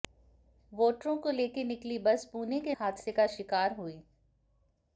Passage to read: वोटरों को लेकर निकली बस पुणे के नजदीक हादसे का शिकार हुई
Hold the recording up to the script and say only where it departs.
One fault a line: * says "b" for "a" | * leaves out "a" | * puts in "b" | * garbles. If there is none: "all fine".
* leaves out "नजदीक"